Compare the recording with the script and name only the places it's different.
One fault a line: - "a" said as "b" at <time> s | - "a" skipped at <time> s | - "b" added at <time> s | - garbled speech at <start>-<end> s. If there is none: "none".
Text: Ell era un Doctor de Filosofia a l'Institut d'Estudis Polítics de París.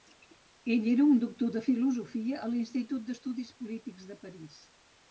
none